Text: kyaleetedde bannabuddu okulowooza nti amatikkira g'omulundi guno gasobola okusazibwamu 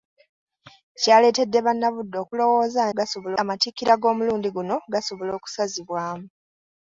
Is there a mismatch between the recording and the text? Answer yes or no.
yes